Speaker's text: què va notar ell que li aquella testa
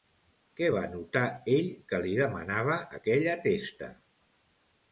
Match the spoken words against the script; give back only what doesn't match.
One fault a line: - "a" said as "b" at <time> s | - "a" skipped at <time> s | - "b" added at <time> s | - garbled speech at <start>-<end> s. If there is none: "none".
- "demanava" added at 2.2 s